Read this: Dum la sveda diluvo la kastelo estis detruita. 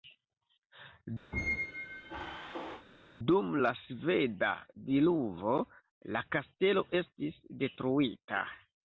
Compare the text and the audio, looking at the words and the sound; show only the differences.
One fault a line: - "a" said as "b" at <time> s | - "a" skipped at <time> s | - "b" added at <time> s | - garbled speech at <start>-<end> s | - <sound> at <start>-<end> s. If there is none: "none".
- squeak at 1.3-2.9 s